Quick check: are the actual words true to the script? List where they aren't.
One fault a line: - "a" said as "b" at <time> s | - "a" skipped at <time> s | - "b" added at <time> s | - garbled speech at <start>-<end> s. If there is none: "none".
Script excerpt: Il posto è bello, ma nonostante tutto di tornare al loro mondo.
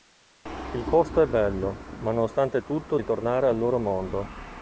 none